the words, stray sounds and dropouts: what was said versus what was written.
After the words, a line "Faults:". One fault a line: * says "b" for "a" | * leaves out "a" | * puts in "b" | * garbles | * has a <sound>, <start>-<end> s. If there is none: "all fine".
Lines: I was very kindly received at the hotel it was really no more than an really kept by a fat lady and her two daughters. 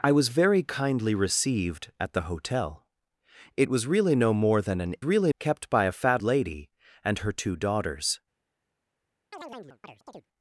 I was very kindly received at the hotel it was really no more than an really kept by a fat lady and her two daughters.
Faults:
* has a chirp, 9.3-10.3 s